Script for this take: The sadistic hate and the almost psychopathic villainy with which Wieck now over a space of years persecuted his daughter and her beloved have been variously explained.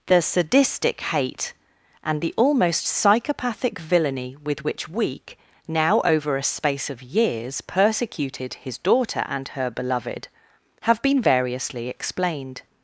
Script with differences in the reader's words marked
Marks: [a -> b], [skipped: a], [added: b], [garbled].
The sadistic hate and the almost psychopathic villainy with which Wieck now over a space of years persecuted his daughter and her beloved have been variously explained.